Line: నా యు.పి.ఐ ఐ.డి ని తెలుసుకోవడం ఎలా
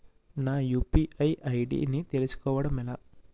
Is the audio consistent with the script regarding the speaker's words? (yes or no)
yes